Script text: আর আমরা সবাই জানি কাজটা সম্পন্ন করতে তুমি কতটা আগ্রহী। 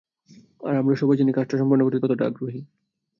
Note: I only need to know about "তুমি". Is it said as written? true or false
false